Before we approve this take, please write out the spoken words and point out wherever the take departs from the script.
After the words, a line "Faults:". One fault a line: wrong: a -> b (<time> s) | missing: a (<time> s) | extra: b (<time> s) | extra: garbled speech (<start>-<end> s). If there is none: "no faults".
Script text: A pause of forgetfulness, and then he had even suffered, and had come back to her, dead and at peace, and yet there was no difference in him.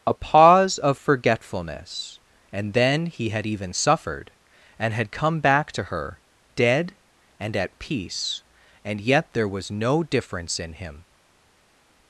A pause of forgetfulness, and then he had even suffered, and had come back to her, dead and at peace, and yet there was no difference in him.
Faults:
no faults